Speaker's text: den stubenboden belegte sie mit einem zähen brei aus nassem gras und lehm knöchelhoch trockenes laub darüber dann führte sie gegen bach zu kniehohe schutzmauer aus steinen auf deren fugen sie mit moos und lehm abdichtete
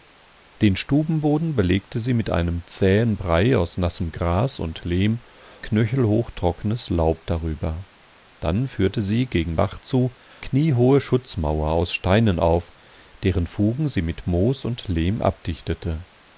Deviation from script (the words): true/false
false